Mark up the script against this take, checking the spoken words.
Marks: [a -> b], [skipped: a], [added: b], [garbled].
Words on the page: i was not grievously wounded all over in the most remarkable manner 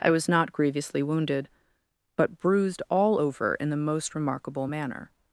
i was not grievously wounded [added: but bruised] all over in the most remarkable manner